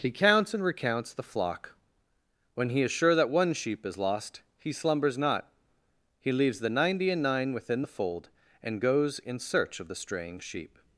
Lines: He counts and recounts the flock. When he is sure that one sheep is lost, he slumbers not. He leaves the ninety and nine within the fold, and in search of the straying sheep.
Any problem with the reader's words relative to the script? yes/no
yes